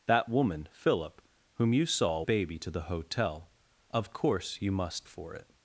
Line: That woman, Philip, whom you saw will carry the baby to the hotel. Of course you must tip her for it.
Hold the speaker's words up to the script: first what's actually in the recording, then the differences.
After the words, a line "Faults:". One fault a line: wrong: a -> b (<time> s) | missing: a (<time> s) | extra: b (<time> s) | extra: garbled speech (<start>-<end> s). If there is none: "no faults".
That woman, Philip, whom you saw baby to the hotel. Of course you must for it.
Faults:
missing: will carry the (2.2 s)
missing: tip her (5.1 s)